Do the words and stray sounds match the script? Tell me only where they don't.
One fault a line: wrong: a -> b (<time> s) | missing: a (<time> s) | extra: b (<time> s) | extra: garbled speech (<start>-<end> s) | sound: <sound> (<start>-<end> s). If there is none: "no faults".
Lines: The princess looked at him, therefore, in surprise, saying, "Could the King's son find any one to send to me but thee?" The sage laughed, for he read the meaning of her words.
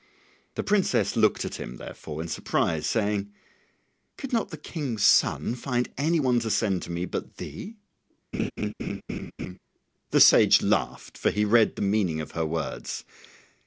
extra: not (4.3 s)
sound: laugh (8.3-9.6 s)